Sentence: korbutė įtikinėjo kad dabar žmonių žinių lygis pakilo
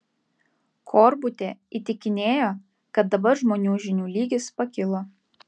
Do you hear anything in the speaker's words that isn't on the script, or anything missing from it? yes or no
no